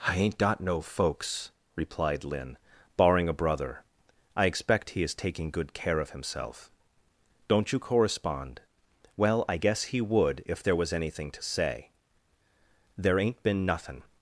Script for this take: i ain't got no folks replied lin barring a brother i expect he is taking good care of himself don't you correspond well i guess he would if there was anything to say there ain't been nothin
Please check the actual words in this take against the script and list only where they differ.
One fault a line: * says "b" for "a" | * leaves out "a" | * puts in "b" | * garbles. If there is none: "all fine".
all fine